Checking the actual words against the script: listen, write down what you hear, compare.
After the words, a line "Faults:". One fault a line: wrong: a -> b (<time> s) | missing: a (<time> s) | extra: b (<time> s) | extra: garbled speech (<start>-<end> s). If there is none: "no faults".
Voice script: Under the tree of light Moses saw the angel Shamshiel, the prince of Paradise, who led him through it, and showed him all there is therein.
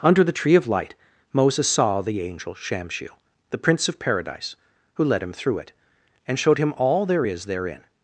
Under the tree of light Moses saw the angel Shamshiel, the prince of Paradise, who led him through it, and showed him all there is therein.
Faults:
no faults